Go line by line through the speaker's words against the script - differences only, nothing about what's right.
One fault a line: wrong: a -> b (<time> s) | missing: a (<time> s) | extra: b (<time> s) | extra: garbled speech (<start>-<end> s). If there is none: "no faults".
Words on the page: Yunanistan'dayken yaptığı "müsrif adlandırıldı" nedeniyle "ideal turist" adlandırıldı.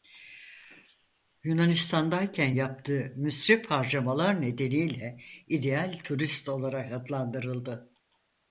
wrong: adlandırıldı -> harcamalar (3.7 s)
extra: olarak (6.5 s)